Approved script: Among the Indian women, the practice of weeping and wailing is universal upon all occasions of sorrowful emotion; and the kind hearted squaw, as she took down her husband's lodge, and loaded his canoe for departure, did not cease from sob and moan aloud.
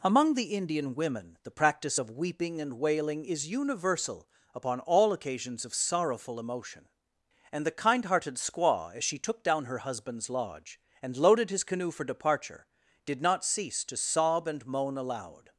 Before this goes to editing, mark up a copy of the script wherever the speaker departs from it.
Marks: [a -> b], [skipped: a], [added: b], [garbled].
Among the Indian women, the practice of weeping and wailing is universal upon all occasions of sorrowful emotion; and the kind hearted squaw, as she took down her husband's lodge, and loaded his canoe for departure, did not cease [from -> to] sob and moan aloud.